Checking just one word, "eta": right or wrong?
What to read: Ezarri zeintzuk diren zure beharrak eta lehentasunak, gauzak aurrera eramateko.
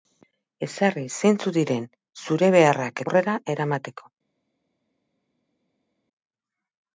wrong